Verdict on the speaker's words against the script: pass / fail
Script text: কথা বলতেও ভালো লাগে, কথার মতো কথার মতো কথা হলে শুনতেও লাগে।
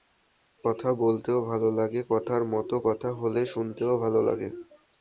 fail